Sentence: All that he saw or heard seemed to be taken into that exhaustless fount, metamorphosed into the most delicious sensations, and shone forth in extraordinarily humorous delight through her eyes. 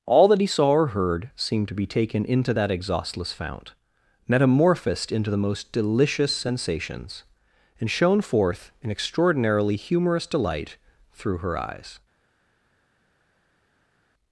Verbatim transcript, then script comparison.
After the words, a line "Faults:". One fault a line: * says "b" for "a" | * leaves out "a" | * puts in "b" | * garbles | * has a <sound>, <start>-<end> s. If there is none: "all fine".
All that he saw or heard seemed to be taken into that exhaustless fount, metamorphosed into the most delicious sensations, and shone forth in extraordinarily humorous delight through her eyes.
Faults:
all fine